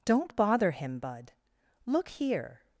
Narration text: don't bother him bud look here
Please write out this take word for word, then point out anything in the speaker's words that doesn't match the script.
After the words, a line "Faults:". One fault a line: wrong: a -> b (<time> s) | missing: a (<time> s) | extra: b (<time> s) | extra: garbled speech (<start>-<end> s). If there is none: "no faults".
don't bother him bud look here
Faults:
no faults